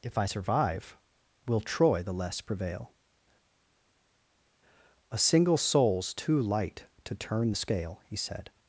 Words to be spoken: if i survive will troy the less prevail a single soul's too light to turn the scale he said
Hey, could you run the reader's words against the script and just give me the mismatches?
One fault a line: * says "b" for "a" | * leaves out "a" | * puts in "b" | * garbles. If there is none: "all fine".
all fine